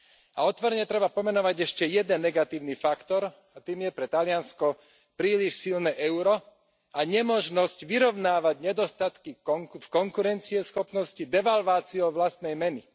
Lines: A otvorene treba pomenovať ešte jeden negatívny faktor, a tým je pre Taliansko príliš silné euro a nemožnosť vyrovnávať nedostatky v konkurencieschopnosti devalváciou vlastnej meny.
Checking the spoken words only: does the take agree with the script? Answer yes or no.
yes